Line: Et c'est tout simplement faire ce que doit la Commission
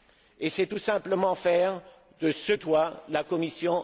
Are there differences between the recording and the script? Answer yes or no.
yes